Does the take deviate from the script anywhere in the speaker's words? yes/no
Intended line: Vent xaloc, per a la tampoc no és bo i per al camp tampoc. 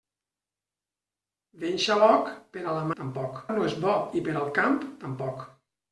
no